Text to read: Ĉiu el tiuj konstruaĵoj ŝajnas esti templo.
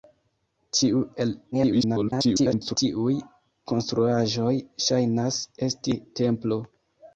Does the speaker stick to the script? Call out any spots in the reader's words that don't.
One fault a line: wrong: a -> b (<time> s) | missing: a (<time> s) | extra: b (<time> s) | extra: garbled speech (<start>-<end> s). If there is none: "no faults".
extra: garbled speech (1.5-2.8 s)